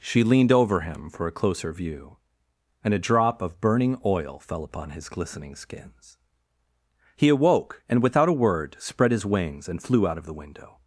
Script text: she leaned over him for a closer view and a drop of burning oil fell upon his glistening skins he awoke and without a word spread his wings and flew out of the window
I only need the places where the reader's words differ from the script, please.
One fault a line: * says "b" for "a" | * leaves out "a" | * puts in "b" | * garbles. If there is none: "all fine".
all fine